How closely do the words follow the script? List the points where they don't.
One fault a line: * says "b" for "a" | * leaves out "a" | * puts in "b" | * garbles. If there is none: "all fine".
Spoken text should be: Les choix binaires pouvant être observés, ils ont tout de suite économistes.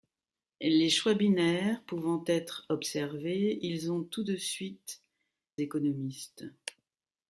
all fine